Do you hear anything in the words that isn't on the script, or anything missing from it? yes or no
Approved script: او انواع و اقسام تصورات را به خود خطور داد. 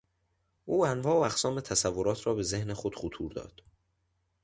yes